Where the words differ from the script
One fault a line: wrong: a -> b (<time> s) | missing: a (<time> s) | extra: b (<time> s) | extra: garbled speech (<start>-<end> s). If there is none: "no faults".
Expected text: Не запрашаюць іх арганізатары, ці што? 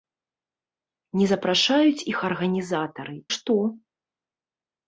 missing: ці (3.2 s)